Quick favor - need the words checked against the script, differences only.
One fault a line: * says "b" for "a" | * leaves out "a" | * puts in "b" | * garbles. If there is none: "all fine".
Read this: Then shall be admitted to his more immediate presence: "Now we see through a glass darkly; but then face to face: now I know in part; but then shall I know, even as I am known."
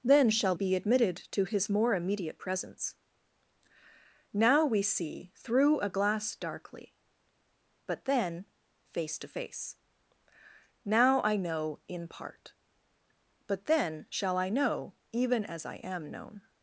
all fine